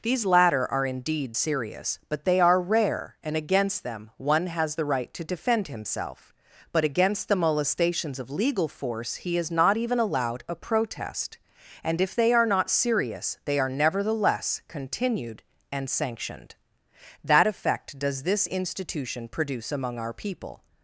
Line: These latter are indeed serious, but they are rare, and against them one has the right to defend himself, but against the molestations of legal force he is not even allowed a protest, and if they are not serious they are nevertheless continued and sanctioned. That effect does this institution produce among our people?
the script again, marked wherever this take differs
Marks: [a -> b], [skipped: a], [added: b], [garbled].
These latter are indeed serious, but they are rare, and against them one has the right to defend himself, but against the molestations of legal force he is not even allowed a protest, and if they are not serious they are nevertheless continued and sanctioned. That effect does this institution produce among our people?